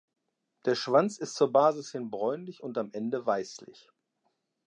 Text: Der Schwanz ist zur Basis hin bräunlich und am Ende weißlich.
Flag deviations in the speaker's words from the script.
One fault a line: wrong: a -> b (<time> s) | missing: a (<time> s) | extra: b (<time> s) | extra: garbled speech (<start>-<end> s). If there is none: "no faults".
no faults